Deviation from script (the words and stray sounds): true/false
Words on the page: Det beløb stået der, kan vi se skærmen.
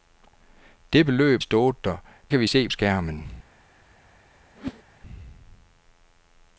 true